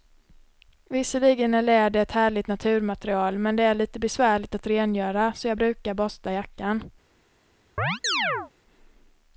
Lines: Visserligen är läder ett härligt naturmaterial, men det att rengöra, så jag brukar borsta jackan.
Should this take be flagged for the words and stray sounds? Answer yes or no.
yes